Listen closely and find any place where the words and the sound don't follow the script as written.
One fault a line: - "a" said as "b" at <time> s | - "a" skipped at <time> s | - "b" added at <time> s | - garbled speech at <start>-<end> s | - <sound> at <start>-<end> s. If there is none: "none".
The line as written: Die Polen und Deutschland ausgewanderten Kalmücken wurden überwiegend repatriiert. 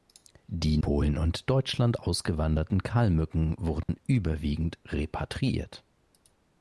- dropout at 3.8-3.9 s